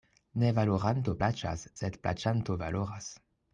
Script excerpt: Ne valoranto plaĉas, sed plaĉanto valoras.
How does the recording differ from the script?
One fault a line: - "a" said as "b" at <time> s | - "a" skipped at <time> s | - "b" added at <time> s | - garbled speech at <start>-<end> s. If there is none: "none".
none